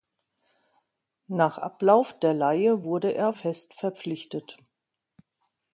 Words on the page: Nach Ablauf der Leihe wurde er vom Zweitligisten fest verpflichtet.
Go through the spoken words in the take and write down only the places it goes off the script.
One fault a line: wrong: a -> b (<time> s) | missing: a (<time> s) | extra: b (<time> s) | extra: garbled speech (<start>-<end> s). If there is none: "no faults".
missing: vom Zweitligisten (3.3 s)